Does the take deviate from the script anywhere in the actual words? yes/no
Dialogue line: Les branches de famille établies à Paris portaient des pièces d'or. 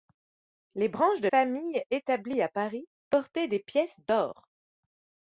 no